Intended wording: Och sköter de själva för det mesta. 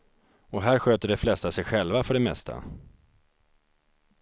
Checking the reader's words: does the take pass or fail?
fail